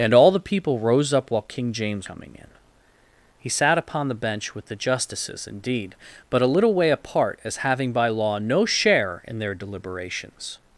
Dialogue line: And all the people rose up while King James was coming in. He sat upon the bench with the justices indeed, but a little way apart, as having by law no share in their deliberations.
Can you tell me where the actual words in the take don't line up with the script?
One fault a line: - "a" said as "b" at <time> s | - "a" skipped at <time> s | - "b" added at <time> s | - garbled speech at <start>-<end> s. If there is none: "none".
- "was" skipped at 2.1 s